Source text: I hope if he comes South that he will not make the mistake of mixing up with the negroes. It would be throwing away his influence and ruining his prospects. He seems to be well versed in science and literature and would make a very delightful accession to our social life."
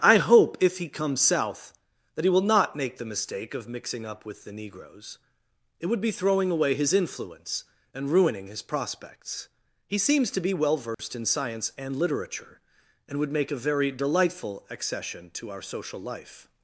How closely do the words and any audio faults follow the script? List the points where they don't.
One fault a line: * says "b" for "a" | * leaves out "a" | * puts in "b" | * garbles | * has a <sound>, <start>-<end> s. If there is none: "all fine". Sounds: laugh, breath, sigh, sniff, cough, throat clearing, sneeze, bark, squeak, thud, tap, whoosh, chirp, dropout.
* has a dropout, 10.9-11.0 s